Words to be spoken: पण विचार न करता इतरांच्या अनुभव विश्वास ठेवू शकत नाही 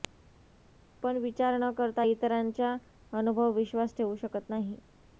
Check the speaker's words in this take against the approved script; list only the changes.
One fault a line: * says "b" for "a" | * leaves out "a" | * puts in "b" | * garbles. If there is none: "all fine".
all fine